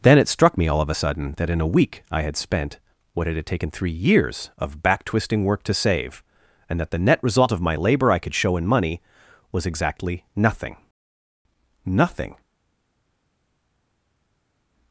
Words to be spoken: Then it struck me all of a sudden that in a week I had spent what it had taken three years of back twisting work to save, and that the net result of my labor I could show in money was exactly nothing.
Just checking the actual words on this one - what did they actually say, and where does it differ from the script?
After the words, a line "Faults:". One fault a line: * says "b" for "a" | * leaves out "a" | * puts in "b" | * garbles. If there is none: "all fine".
Then it struck me all of a sudden that in a week I had spent what it had taken three years of back twisting work to save, and that the net result of my labor I could show in money was exactly nothing nothing.
Faults:
* puts in "nothing"